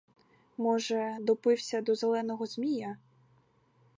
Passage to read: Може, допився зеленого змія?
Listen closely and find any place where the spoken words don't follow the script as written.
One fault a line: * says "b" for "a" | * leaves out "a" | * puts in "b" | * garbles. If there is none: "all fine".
* puts in "до"